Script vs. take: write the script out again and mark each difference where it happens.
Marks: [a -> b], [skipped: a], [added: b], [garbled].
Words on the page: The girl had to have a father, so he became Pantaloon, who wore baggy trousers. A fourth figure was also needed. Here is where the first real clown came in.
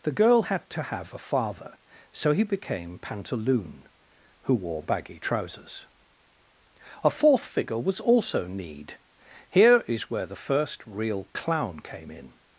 The girl had to have a father, so he became Pantaloon, who wore baggy trousers. A fourth figure was also [needed. -> need] Here is where the first real clown came in.